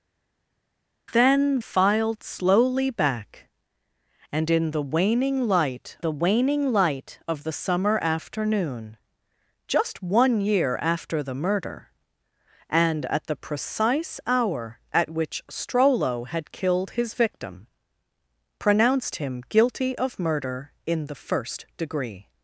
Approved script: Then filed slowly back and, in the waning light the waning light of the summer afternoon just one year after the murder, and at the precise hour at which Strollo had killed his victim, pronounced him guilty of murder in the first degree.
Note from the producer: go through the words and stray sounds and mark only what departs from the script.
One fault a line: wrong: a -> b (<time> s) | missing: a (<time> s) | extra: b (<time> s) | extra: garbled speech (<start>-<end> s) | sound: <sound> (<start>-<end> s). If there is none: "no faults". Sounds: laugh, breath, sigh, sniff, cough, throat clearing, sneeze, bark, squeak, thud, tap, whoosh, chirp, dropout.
no faults